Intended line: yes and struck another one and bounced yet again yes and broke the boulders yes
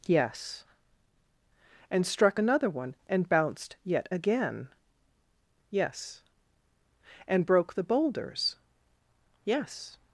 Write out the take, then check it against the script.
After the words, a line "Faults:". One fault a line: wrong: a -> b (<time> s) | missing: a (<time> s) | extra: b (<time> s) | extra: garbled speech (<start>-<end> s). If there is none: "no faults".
yes and struck another one and bounced yet again yes and broke the boulders yes
Faults:
no faults